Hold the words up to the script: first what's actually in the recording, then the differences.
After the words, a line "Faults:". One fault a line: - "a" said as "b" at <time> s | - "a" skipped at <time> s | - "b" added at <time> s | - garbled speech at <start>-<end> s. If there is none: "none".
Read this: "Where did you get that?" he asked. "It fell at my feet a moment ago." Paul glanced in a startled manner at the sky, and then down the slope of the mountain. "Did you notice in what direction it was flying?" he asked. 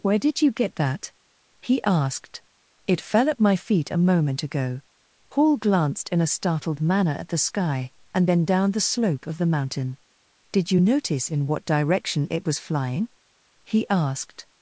"Where did you get that?" he asked. "It fell at my feet a moment ago." Paul glanced in a startled manner at the sky, and then down the slope of the mountain. "Did you notice in what direction it was flying?" he asked.
Faults:
none